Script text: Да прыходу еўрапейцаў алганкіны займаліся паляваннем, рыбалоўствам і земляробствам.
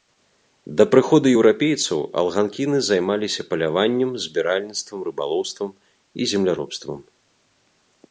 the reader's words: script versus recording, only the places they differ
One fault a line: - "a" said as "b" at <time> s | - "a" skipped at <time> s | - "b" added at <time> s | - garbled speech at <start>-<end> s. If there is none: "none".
- "збіральніцтвам" added at 4.3 s